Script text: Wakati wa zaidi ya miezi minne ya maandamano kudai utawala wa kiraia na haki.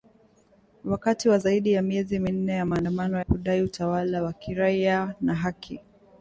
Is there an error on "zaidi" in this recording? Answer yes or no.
no